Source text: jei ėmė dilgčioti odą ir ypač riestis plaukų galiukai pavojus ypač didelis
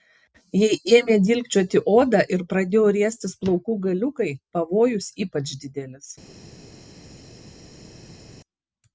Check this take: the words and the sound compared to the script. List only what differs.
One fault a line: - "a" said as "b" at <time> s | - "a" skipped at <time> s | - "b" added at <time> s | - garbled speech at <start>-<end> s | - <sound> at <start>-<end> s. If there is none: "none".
- "ypač" said as "pradėjo" at 2.5 s